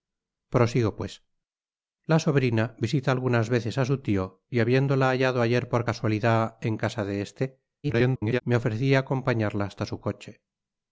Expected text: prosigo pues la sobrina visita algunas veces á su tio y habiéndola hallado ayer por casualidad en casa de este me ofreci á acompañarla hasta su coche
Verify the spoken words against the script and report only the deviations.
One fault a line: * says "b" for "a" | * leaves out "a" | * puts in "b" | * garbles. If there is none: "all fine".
* garbles